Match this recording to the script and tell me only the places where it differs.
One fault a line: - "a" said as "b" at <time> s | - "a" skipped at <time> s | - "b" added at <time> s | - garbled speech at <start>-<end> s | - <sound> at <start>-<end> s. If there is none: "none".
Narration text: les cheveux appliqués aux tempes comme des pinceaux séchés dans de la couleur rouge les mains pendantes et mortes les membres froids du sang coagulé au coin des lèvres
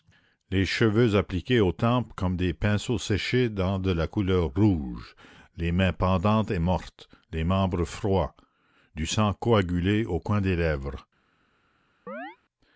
- chirp at 12.1-12.4 s